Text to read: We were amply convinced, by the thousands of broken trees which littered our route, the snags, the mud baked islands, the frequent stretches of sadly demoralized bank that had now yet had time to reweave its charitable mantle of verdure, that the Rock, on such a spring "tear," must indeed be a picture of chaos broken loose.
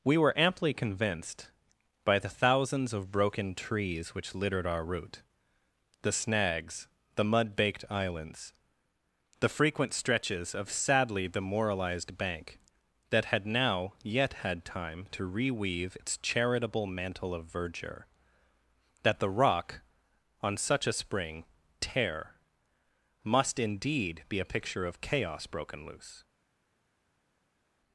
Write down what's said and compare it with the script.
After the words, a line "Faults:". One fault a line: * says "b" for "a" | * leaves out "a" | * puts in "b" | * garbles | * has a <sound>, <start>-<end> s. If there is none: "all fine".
We were amply convinced, by the thousands of broken trees which littered our route, the snags, the mud baked islands, the frequent stretches of sadly demoralized bank that had now yet had time to reweave its charitable mantle of verdure, that the Rock, on such a spring "tear," must indeed be a picture of chaos broken loose.
Faults:
all fine